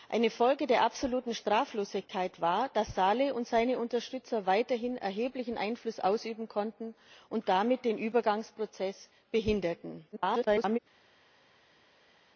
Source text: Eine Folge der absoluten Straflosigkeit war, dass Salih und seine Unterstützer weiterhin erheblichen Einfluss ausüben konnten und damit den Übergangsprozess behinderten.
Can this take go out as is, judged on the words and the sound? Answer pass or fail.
fail